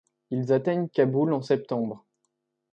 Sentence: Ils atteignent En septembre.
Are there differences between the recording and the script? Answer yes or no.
yes